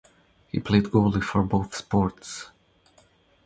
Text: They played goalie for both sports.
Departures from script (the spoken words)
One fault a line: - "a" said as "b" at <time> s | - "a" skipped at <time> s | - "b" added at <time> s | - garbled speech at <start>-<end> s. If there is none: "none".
- "They" said as "He" at 0.5 s